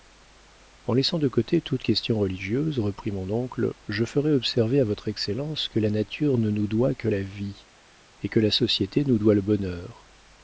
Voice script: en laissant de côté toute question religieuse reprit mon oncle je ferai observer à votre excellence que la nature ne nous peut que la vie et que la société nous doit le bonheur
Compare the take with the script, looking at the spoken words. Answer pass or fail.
fail